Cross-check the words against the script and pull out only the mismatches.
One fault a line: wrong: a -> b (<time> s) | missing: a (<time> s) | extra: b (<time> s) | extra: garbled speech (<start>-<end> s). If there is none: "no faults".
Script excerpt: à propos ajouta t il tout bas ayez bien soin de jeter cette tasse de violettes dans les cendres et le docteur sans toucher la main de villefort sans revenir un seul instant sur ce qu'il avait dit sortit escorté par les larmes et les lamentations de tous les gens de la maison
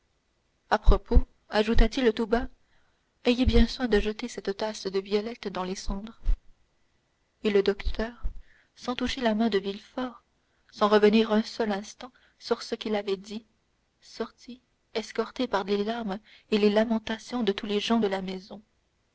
no faults